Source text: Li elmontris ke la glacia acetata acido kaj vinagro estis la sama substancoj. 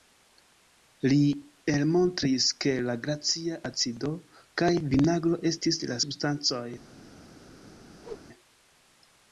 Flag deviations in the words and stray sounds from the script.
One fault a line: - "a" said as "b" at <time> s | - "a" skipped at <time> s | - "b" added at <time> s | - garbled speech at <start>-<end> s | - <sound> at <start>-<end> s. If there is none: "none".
- "acetata" skipped at 3.6 s
- "sama" skipped at 6.0 s
- whoosh at 8.0-8.3 s